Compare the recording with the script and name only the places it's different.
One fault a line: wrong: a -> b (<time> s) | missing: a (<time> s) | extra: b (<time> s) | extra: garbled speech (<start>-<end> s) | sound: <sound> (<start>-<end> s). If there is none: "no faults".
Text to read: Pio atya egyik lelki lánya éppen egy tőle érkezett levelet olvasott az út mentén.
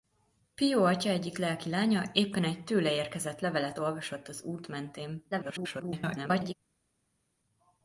extra: garbled speech (5.3-6.5 s)